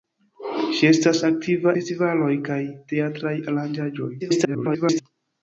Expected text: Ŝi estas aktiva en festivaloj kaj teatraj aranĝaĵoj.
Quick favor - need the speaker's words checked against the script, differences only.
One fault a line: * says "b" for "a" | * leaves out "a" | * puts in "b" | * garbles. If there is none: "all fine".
* leaves out "en"
* garbles